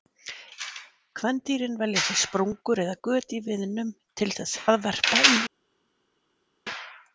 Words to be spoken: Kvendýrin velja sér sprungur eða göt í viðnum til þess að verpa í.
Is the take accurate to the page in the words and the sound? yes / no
yes